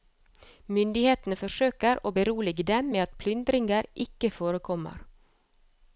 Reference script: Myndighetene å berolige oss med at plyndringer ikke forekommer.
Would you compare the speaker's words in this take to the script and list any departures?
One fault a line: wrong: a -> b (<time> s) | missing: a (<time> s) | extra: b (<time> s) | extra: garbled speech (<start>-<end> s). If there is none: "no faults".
extra: forsøker (1.4 s)
wrong: oss -> dem (2.7 s)